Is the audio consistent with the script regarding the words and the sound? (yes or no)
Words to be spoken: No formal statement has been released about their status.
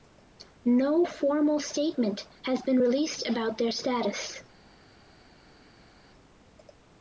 yes